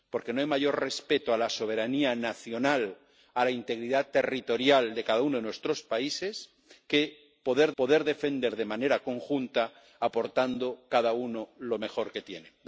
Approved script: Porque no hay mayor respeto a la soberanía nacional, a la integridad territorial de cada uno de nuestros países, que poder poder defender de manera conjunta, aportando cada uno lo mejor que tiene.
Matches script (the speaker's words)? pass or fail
pass